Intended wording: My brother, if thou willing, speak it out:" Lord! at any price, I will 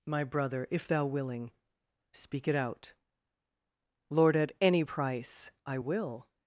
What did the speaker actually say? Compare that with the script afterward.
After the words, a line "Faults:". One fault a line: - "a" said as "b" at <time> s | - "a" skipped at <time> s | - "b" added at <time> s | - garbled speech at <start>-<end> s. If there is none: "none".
My brother, if thou willing, speak it out:" Lord! at any price, I will
Faults:
none